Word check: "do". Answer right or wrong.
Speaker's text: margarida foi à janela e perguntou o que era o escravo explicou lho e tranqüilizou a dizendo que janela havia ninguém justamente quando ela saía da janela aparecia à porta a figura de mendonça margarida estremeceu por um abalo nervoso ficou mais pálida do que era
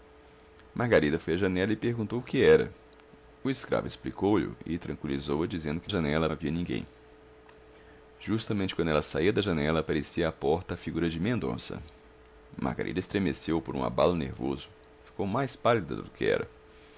right